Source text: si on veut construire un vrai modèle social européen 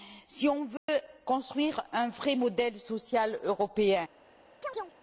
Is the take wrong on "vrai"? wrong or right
right